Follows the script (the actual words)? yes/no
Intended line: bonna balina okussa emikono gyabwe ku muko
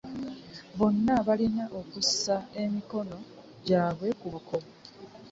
yes